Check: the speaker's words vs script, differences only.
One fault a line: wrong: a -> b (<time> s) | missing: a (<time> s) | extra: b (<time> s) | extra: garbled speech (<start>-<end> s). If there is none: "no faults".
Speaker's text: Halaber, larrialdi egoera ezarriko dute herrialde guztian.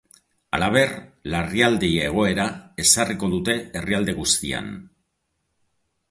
no faults